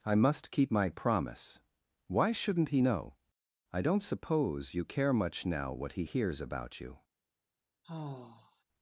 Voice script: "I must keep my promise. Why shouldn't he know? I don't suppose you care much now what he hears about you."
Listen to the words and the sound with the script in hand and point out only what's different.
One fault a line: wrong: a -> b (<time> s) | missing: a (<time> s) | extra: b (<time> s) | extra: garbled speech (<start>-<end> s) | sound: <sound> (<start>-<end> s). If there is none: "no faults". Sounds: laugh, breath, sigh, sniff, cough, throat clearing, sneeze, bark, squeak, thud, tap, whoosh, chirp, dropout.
sound: sigh (7.8-8.6 s)